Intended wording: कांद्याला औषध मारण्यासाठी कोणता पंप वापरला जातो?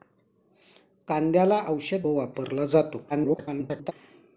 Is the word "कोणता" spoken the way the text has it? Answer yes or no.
no